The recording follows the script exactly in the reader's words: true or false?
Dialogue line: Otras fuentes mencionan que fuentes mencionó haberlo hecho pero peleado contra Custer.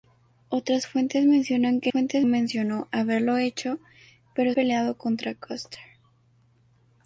true